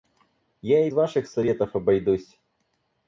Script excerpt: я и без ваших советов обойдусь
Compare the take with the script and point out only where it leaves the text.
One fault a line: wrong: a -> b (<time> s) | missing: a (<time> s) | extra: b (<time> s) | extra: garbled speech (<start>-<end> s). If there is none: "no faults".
missing: без (0.9 s)